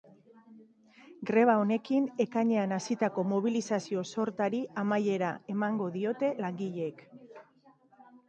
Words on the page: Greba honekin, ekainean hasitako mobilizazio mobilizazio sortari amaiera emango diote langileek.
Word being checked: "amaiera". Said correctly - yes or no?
yes